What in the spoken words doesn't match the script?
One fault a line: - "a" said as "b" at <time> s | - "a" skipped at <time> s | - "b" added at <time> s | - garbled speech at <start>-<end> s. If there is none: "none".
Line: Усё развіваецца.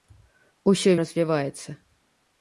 none